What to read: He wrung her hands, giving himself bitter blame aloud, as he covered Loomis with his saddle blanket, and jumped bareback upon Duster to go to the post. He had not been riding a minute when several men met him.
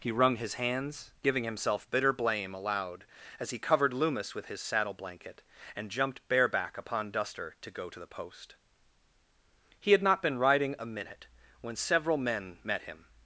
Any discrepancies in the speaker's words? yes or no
yes